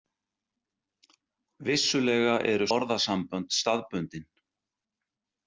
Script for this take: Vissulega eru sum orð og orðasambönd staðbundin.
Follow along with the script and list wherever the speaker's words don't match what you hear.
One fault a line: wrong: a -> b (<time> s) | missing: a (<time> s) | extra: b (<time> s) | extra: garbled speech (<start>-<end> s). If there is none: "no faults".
missing: sum orð og (2.7 s)